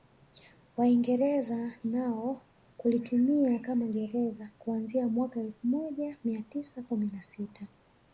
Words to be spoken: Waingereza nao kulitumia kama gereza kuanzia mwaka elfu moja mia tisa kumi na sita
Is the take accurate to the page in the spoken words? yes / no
yes